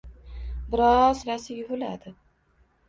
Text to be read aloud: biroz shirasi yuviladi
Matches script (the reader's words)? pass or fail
pass